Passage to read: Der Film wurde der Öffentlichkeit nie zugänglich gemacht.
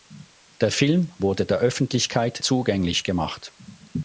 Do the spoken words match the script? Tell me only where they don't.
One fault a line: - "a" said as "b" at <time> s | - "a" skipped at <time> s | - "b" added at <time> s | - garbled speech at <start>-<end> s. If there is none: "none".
- "nie" skipped at 2.4 s